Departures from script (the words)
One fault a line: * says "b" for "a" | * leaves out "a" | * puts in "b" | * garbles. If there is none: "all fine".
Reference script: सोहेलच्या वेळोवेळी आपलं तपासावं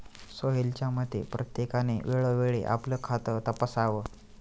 * puts in "मते प्रत्येकाने"
* puts in "खातं"